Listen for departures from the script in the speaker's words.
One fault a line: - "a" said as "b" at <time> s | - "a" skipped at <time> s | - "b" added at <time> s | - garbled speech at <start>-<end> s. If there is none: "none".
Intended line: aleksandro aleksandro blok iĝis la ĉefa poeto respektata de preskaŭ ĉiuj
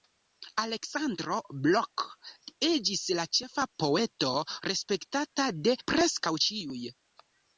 - "aleksandro" skipped at 1.4 s